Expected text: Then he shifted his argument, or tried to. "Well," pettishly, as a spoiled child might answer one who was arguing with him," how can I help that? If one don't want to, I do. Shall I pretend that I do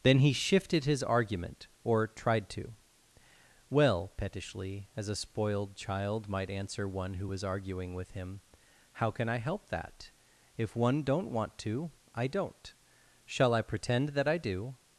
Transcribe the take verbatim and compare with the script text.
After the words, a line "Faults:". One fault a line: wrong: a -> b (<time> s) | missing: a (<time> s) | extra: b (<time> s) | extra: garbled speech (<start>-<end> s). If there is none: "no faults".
Then he shifted his argument, or tried to. "Well," pettishly, as a spoiled child might answer one who was arguing with him," how can I help that? If one don't want to, I don't. Shall I pretend that I do
Faults:
wrong: do -> don't (12.3 s)